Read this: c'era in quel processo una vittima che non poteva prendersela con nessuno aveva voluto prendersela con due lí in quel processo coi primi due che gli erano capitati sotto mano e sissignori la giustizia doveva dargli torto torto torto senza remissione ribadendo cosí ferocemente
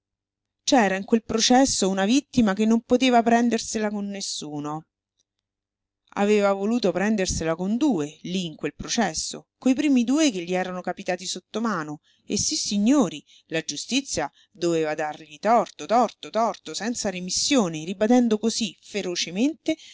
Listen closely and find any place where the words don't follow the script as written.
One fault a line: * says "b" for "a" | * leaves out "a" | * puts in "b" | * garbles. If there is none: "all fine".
all fine